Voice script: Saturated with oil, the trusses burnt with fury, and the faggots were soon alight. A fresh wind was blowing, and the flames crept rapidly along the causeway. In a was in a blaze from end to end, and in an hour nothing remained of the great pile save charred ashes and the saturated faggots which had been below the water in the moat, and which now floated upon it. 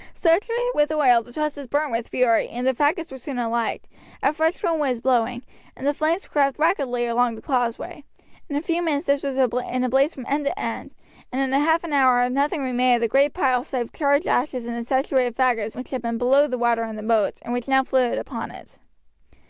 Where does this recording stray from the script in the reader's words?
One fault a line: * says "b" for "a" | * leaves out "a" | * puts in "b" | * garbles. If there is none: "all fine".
* puts in "few minutes this"
* puts in "half"